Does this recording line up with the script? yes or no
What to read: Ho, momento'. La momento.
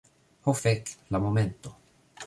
no